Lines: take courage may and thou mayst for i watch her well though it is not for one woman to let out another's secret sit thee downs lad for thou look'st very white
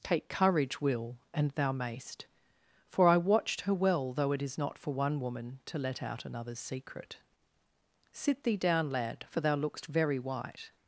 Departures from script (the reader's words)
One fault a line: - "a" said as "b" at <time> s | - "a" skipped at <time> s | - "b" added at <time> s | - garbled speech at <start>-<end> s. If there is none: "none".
- "may" said as "will" at 0.8 s
- "watch" said as "watched" at 3.2 s
- "downs" said as "down" at 8.6 s